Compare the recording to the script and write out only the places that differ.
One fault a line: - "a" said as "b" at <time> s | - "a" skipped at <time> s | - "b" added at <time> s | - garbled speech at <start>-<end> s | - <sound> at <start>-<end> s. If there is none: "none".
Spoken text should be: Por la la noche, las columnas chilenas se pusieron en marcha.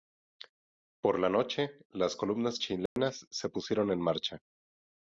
- "la" skipped at 1.3 s
- dropout at 2.9-3.0 s